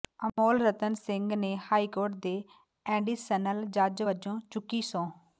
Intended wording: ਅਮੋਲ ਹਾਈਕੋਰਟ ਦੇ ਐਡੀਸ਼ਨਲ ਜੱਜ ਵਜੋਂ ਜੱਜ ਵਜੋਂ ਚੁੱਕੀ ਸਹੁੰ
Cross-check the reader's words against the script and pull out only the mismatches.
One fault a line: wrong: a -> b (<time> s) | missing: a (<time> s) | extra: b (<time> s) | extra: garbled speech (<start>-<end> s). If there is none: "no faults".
extra: ਰਤਨ ਸਿੰਘ ਨੇ (0.6 s)
missing: ਜੱਜ ਵਜੋਂ (4.4 s)